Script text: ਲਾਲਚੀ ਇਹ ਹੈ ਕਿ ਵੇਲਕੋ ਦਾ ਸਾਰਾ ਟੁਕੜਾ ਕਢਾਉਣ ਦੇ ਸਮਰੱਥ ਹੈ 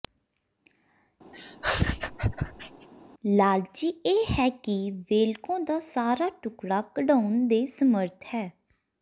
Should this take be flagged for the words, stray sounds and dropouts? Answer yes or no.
yes